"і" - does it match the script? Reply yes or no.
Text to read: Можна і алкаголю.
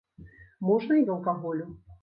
yes